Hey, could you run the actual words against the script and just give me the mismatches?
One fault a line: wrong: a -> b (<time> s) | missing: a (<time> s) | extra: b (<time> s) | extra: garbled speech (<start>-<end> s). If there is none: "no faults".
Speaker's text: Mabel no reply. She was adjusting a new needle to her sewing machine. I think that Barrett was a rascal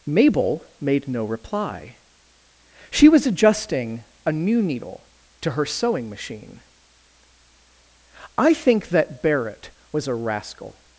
extra: made (0.8 s)